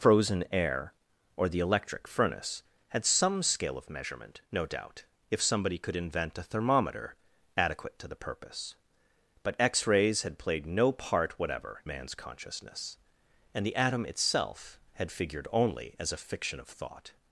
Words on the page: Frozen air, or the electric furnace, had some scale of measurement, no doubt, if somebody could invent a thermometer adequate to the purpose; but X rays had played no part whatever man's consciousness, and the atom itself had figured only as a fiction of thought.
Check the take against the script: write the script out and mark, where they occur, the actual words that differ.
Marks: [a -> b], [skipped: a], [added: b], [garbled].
Frozen air, or the electric furnace, had some scale of measurement, no doubt, if somebody could invent a thermometer adequate to the purpose; but X rays had played no part whatever man's consciousness, and the atom itself had figured only as a fiction of thought.